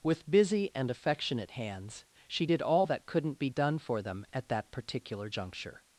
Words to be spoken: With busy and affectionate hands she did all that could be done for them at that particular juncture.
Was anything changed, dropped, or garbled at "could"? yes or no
yes